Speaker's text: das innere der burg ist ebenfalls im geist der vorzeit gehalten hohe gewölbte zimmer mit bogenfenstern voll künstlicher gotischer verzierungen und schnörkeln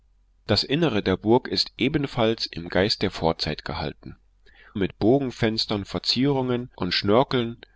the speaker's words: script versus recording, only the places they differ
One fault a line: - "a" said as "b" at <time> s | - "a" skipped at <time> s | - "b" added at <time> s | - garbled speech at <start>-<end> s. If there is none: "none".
- "hohe gewölbte zimmer" skipped at 4.2 s
- "voll künstlicher gotischer" skipped at 5.8 s